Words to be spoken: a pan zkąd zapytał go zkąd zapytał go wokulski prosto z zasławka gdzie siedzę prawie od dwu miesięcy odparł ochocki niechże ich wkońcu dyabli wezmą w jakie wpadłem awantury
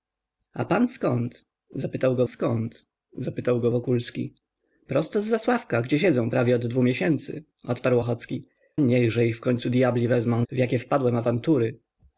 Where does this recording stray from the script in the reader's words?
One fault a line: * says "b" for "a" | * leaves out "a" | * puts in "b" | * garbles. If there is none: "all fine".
all fine